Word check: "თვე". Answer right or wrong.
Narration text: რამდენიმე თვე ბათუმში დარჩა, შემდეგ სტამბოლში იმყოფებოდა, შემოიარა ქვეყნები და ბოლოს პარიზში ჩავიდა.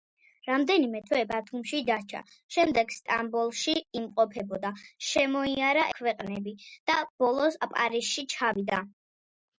right